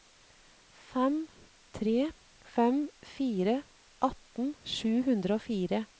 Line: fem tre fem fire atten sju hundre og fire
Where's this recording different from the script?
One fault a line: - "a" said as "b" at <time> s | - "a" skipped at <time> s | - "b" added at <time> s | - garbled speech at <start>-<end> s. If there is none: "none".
none